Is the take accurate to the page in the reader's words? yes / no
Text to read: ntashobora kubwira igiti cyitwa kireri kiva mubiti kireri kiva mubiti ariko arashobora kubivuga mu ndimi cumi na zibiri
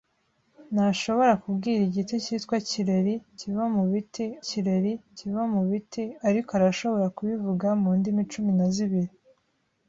yes